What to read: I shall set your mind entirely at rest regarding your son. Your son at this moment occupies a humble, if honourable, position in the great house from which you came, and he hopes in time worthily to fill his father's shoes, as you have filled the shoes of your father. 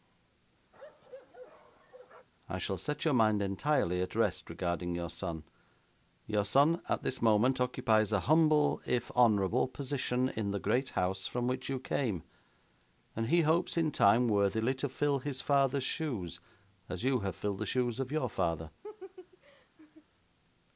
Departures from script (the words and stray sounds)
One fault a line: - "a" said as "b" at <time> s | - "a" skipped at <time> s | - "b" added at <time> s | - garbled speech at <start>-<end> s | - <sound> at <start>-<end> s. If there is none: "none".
- bark at 0.7-2.3 s
- laugh at 18.8-20.1 s